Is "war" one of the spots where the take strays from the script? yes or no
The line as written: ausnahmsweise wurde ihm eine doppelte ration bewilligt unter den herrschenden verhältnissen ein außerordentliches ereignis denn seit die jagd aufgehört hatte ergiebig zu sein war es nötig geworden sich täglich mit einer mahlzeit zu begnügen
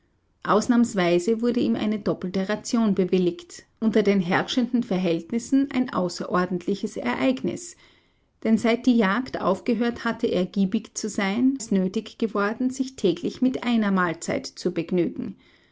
yes